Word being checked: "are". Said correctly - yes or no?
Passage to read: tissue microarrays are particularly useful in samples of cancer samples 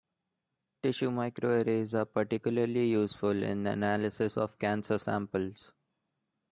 yes